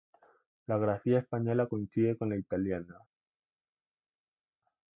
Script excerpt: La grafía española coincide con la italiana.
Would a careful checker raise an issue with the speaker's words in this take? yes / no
no